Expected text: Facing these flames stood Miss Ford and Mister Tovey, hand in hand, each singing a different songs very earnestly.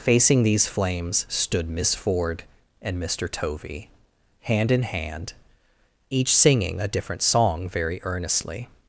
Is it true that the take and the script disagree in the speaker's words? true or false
true